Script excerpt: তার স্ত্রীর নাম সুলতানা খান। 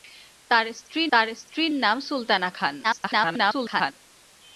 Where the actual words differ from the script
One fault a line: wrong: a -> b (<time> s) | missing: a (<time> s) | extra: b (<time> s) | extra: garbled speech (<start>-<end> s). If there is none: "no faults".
extra: তার স্ত্রীর (1.1 s)
extra: garbled speech (2.8-3.9 s)